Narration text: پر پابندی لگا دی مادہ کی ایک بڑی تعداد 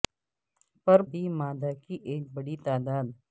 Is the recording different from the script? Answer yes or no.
yes